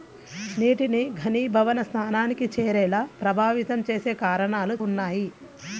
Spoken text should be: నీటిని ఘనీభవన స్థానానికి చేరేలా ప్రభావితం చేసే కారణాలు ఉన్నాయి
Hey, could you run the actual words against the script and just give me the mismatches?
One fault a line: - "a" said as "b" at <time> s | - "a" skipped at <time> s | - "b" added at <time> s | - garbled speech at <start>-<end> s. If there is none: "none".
none